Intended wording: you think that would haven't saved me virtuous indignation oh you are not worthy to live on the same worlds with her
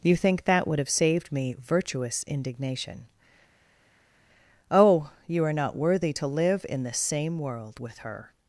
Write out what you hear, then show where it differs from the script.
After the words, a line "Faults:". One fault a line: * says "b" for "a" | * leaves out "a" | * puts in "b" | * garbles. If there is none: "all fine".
you think that would have saved me virtuous indignation oh you are not worthy to live in the same world with her
Faults:
* says "have" for "haven't"
* says "in" for "on"
* says "world" for "worlds"